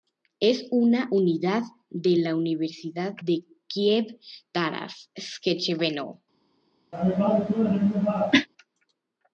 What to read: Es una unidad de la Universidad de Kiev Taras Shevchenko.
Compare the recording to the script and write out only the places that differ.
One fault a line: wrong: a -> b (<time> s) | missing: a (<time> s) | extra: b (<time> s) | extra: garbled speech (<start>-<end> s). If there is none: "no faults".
no faults